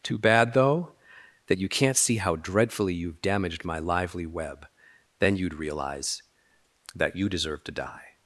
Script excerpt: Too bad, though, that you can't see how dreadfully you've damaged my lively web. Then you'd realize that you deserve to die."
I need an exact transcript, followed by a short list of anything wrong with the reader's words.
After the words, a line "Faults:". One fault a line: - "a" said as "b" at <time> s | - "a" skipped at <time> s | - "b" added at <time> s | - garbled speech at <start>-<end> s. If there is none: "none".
Too bad, though, that you can't see how dreadfully you've damaged my lively web. Then you'd realize that you deserve to die."
Faults:
none